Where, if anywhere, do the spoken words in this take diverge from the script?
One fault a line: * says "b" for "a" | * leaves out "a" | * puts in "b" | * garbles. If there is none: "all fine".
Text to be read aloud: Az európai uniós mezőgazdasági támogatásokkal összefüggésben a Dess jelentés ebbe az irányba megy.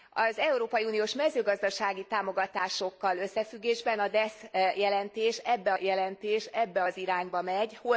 * puts in "jelentés ebbe"